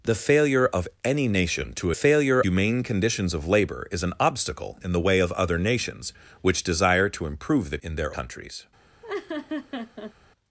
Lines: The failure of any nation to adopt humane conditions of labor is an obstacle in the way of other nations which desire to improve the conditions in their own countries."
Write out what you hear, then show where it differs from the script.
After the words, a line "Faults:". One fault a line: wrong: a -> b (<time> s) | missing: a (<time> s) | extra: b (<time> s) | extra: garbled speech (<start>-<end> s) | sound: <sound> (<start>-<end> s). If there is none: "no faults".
The failure of any nation to failure humane conditions of labor is an obstacle in the way of other nations which desire to improve the in their countries."
Faults:
wrong: adopt -> failure (1.9 s)
missing: conditions (7.8 s)
missing: own (8.2 s)
sound: laugh (9.0-10.1 s)